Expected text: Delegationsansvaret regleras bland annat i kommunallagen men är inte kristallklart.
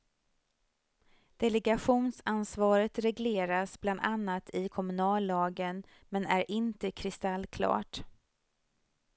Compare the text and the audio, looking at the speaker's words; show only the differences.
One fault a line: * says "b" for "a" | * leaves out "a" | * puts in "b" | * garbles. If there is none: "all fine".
all fine